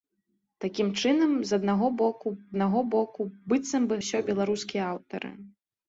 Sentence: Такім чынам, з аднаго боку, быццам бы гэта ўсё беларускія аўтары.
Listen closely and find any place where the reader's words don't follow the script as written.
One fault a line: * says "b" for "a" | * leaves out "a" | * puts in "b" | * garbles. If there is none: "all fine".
* puts in "аднаго боку"
* leaves out "гэта"